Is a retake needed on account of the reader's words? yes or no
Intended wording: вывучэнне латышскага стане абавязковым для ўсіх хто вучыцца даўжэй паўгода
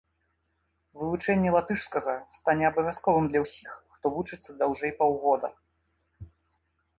no